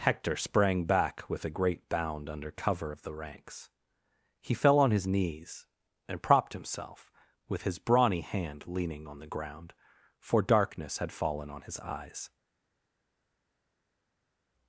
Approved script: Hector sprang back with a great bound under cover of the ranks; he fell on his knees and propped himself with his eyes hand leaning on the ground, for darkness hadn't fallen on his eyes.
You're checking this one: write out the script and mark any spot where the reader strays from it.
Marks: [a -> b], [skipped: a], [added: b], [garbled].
Hector sprang back with a great bound under cover of the ranks; he fell on his knees and propped himself with his [eyes -> brawny] hand leaning on the ground, for darkness [hadn't -> had] fallen on his eyes.